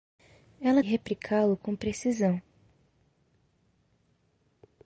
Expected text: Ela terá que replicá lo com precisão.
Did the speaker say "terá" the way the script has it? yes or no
no